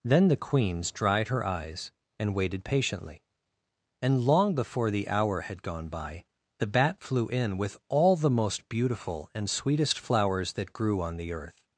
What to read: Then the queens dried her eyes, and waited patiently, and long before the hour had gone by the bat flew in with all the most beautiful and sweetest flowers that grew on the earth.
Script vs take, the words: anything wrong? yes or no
no